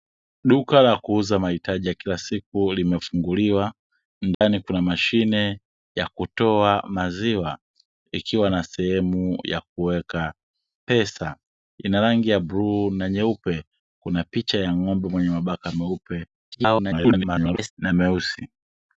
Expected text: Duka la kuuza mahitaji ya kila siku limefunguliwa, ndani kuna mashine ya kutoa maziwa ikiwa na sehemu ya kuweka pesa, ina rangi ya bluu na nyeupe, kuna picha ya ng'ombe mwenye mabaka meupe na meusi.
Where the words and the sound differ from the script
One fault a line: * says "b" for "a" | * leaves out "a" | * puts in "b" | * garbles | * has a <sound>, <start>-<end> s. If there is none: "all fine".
* has a dropout, 4.3-4.4 s
* garbles